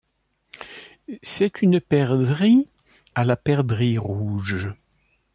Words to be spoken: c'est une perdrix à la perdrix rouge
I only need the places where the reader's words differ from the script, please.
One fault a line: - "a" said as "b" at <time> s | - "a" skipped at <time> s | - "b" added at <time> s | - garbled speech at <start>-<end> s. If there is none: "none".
none